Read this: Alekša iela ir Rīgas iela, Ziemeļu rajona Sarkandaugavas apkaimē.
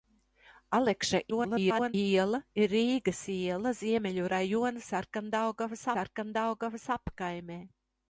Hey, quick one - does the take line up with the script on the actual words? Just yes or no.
no